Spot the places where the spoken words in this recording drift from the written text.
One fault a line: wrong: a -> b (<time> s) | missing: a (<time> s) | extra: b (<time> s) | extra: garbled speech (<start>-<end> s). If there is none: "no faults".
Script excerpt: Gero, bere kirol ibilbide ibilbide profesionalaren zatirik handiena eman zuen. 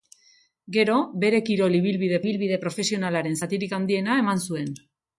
no faults